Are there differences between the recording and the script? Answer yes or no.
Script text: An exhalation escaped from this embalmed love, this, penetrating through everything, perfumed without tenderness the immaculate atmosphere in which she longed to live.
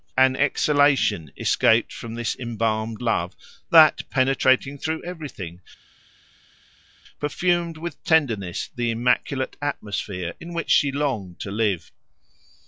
yes